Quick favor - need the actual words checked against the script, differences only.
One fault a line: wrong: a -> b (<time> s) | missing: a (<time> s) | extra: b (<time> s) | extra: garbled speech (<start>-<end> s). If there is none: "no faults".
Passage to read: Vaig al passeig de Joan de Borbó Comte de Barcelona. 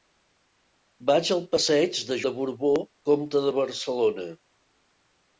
missing: Joan (2.2 s)